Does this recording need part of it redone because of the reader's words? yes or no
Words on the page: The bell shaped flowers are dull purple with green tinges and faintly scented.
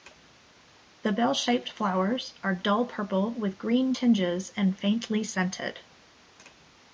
no